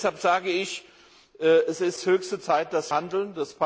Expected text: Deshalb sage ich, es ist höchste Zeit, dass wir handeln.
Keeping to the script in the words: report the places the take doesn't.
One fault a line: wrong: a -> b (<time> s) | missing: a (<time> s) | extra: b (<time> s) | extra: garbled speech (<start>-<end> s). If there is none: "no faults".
missing: wir (2.9 s)